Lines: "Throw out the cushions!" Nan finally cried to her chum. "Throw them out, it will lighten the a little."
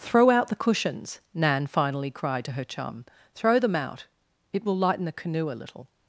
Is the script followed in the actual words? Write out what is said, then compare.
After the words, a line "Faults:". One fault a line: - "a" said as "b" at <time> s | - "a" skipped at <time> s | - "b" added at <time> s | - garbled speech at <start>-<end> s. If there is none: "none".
"Throw out the cushions!" Nan finally cried to her chum. "Throw them out, it will lighten the canoe a little."
Faults:
- "canoe" added at 5.1 s